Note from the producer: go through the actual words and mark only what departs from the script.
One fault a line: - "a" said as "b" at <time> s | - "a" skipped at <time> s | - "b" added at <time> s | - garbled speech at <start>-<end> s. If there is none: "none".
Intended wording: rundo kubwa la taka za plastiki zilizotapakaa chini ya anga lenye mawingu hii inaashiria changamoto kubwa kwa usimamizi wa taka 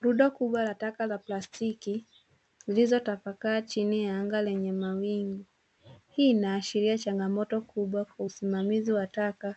none